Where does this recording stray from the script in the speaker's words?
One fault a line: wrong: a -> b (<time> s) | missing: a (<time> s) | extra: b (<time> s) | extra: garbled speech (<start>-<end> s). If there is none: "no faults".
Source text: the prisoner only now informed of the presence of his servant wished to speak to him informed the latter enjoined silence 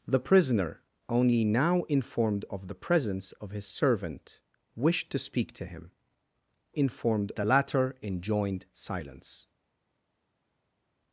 no faults